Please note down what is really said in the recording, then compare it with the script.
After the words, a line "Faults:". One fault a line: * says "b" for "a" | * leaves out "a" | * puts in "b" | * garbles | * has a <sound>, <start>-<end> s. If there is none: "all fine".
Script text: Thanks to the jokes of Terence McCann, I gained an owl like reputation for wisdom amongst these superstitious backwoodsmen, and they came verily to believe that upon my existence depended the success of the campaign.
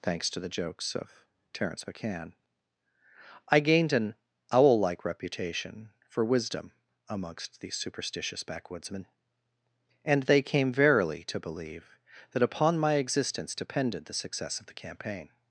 Thanks to the jokes of Terence McCann, I gained an owl like reputation for wisdom amongst these superstitious backwoodsmen, and they came verily to believe that upon my existence depended the success of the campaign.
Faults:
all fine